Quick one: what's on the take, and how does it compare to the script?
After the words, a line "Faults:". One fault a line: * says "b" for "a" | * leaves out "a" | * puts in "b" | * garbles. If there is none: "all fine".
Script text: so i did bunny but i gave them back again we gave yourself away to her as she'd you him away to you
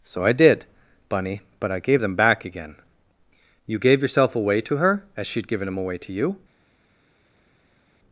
so i did bunny but i gave them back again you gave yourself away to her as she'd given him away to you
Faults:
* says "you" for "we"
* says "given" for "you"